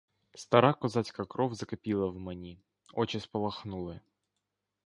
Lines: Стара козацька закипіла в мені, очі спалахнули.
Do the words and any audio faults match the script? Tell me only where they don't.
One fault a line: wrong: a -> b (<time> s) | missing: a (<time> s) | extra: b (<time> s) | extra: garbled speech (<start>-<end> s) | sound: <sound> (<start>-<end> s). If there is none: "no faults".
extra: кров (1.2 s)